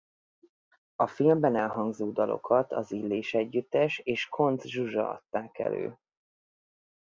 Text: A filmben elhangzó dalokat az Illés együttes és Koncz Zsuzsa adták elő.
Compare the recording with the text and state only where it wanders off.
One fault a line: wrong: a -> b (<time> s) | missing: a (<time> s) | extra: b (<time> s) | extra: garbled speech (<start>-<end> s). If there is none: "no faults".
no faults